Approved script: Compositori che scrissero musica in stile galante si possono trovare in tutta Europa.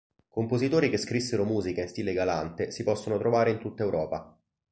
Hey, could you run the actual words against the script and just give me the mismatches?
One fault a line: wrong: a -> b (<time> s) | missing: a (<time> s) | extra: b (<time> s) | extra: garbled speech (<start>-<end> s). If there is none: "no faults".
no faults